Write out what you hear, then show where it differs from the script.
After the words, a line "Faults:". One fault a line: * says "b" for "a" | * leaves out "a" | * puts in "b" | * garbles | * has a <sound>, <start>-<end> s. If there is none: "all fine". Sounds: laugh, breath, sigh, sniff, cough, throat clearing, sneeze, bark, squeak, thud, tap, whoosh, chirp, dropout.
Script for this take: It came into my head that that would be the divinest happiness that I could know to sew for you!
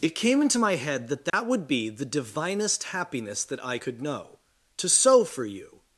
It came into my head that that would be the divinest happiness that I could know to sew for you!
Faults:
* has a dropout, 1.3-1.3 s